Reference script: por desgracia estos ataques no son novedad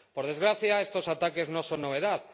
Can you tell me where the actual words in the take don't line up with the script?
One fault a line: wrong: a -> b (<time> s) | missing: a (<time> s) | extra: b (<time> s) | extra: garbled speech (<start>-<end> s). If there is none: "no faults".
no faults